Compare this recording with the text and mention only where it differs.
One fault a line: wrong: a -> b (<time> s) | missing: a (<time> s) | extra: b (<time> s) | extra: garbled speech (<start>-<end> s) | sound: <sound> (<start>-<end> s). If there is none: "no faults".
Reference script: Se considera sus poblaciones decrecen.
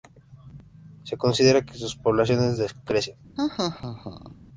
extra: que (1.6 s)
sound: laugh (3.4-4.4 s)